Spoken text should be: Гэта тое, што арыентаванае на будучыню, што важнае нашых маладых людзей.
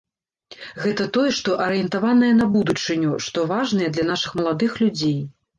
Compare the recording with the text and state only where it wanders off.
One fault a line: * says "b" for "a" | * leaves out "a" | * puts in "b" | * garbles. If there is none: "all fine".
* puts in "для"